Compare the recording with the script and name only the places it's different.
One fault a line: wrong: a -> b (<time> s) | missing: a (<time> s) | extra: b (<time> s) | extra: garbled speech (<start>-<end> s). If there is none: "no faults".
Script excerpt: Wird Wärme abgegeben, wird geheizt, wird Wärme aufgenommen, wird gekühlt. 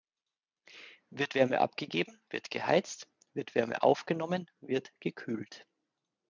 no faults